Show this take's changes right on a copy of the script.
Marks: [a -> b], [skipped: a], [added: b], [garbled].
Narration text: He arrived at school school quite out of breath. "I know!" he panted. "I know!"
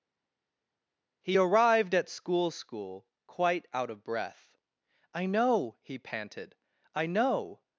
He arrived at school school quite out of breath. "I know!" he panted. "I know!"